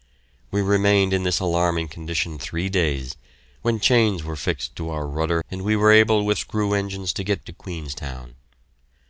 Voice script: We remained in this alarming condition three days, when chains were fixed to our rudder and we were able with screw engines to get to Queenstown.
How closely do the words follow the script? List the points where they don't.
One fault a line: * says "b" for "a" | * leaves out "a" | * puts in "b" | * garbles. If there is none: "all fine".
all fine